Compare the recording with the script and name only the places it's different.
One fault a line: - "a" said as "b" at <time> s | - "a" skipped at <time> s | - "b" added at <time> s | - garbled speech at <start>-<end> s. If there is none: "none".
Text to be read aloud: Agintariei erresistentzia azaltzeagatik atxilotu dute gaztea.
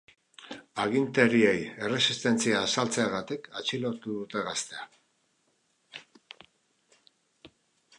none